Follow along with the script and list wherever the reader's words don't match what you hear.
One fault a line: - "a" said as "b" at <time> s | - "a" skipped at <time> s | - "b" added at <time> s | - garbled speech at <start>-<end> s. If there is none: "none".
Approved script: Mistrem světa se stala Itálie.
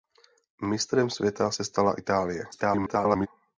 - garbled speech at 2.5-3.3 s